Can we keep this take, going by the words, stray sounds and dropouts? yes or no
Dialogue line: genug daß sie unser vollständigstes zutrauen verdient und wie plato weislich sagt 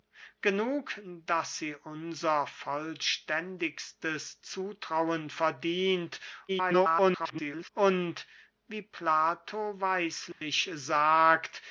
no